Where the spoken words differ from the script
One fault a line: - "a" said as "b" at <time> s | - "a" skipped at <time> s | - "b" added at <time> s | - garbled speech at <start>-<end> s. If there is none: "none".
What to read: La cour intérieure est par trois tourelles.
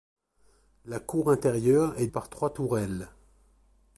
none